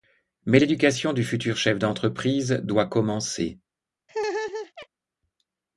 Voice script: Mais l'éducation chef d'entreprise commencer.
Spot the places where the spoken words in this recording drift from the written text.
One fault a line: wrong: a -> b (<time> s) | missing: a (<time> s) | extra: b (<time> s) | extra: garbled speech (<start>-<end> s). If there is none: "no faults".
extra: du futur (1.1 s)
extra: doit (2.6 s)